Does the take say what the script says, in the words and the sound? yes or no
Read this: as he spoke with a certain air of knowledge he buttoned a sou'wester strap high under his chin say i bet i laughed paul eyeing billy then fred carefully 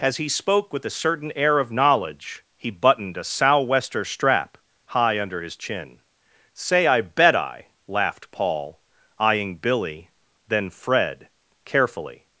yes